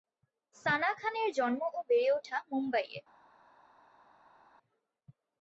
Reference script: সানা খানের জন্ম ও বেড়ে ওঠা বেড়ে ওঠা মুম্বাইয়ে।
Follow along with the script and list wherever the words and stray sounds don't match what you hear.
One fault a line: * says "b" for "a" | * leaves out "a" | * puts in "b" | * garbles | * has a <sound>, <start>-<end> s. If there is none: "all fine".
* leaves out "বেড়ে ওঠা"